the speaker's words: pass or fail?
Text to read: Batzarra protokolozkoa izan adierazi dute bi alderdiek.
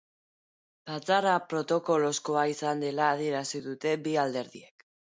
fail